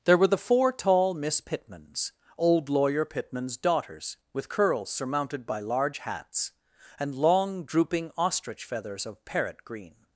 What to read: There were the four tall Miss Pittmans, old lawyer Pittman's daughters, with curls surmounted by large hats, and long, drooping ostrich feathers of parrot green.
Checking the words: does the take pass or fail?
pass